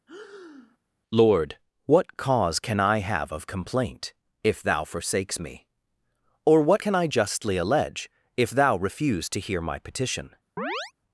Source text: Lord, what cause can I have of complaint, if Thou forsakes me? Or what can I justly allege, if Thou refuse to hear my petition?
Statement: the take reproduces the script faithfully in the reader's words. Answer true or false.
true